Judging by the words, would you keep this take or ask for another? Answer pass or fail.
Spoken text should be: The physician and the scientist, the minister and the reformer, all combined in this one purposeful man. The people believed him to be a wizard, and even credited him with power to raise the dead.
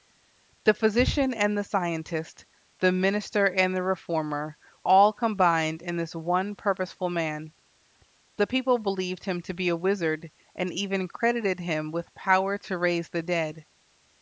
pass